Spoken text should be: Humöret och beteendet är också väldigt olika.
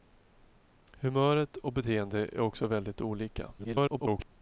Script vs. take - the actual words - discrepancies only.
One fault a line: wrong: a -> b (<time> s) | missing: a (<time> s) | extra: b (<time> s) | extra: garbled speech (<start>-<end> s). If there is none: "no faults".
extra: garbled speech (3.6-4.3 s)